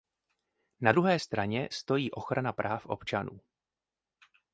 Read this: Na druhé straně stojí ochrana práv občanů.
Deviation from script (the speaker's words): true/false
false